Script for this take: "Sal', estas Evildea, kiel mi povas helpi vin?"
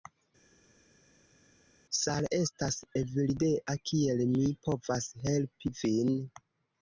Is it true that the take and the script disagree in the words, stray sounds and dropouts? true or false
false